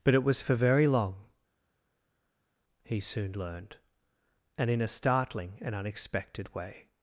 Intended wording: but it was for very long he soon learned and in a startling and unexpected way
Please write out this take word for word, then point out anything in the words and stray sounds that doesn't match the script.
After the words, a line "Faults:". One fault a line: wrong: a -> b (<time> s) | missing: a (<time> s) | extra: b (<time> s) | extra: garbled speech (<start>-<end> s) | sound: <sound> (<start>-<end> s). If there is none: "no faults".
but it was for very long he soon learned and in a startling and unexpected way
Faults:
no faults